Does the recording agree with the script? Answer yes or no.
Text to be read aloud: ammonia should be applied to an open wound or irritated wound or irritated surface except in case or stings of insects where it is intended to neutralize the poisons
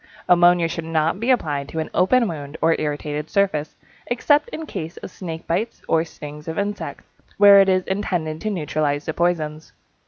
no